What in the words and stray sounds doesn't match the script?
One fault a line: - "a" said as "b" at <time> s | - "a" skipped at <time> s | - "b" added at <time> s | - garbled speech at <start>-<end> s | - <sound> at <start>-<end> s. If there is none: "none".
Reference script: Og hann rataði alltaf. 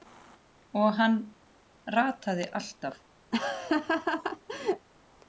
- laugh at 3.3-4.9 s